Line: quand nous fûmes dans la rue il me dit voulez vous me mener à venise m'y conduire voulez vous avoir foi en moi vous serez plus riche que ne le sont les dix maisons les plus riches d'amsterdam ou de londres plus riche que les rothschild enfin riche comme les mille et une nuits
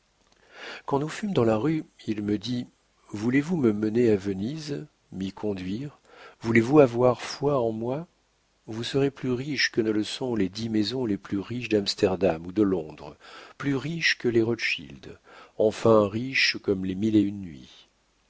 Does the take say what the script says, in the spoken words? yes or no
yes